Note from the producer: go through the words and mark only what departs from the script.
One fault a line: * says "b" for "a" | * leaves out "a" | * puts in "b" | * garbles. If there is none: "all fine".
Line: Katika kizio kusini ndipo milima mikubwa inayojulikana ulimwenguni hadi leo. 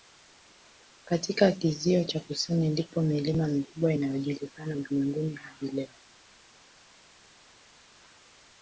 * puts in "cha"